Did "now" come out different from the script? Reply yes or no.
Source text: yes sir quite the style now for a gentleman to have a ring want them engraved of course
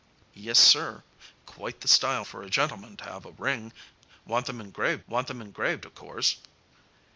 yes